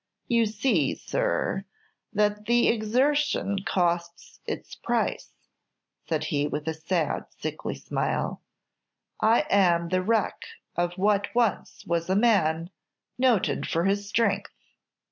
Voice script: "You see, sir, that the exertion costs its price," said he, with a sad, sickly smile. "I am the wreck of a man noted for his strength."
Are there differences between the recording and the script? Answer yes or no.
yes